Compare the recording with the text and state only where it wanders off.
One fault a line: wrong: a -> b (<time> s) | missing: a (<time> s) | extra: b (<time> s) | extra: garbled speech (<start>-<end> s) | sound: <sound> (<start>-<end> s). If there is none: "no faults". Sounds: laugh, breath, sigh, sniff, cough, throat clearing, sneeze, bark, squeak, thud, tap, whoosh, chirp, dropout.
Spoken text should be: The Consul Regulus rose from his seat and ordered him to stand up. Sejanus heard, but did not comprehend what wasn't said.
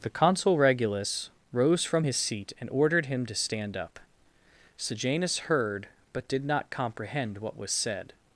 wrong: wasn't -> was (7.6 s)